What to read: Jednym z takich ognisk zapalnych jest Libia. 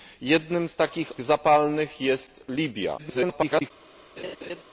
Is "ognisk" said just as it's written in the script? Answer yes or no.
no